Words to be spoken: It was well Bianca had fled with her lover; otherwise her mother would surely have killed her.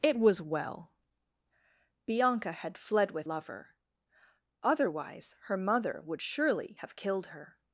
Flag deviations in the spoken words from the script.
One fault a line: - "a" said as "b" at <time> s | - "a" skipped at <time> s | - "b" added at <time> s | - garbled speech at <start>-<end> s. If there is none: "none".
- "her" skipped at 3.3 s